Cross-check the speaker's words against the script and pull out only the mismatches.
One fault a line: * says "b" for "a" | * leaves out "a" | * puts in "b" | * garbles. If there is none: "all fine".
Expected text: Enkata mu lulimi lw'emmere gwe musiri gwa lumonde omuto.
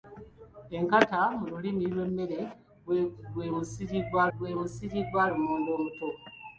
* puts in "gwe musiri gwa"